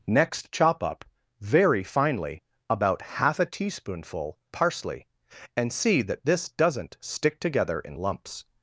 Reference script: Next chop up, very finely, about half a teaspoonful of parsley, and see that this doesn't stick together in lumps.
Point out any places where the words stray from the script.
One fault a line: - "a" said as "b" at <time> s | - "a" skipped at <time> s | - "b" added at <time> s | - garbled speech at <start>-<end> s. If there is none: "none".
- "of" skipped at 4.4 s